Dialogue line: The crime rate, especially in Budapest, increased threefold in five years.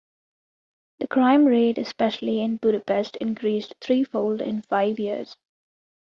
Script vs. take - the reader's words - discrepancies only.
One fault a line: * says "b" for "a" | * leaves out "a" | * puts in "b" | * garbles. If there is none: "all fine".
all fine